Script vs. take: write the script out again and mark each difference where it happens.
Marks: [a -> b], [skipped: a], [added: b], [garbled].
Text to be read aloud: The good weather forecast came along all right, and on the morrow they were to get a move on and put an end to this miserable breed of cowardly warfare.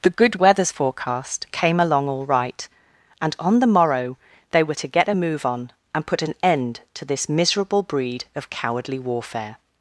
The good [weather -> weathers] forecast came along all right, and on the morrow they were to get a move on and put an end to this miserable breed of cowardly warfare.